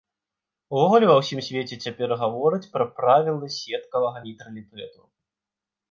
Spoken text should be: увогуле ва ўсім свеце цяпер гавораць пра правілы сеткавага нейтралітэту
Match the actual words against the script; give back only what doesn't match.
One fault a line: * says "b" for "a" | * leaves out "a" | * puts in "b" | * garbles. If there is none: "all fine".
all fine